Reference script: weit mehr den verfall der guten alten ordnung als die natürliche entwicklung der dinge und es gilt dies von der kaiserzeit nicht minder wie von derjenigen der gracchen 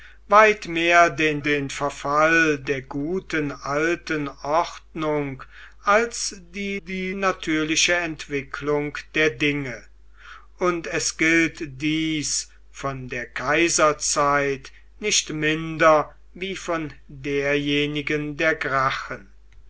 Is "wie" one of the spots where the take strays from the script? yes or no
no